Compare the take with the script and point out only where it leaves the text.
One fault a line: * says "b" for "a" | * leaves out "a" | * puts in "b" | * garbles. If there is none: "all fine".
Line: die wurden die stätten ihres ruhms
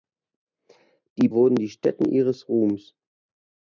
all fine